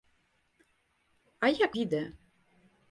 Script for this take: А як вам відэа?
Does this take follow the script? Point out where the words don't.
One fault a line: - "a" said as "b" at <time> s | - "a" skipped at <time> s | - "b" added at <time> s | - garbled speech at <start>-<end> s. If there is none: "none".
- "вам" skipped at 1.7 s